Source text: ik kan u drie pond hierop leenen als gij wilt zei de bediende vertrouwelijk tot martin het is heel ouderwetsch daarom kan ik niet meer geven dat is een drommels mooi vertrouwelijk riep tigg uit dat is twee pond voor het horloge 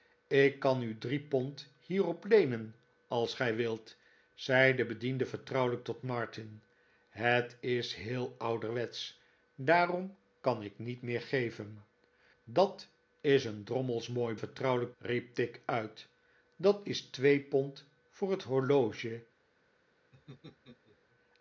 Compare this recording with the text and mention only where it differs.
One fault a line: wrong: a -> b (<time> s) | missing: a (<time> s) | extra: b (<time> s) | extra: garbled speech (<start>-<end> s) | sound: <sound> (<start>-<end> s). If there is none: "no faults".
sound: laugh (20.1-21.0 s)